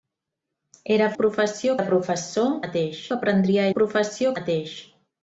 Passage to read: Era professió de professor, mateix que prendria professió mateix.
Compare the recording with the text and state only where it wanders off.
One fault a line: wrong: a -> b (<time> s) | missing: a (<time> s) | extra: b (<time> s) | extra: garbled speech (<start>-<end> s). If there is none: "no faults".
no faults